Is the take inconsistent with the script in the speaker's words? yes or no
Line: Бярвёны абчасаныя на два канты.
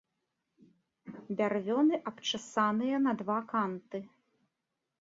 no